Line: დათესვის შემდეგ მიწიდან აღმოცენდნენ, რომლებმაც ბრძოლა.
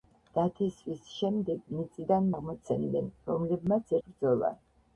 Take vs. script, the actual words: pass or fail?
pass